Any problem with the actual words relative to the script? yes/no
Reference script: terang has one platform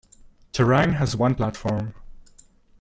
no